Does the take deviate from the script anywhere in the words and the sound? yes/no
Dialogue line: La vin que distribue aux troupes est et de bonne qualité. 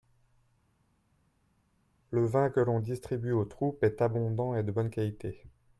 yes